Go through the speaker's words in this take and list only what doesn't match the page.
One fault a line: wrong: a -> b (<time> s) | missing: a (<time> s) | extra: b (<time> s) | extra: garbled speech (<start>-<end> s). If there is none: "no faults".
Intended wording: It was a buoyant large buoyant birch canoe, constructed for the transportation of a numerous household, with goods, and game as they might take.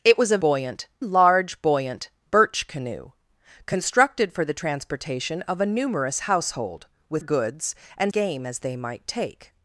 no faults